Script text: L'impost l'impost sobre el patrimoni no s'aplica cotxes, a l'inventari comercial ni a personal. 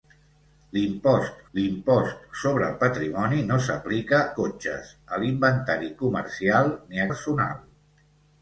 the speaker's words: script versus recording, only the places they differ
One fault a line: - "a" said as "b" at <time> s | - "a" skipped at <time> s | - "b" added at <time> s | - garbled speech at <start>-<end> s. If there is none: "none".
none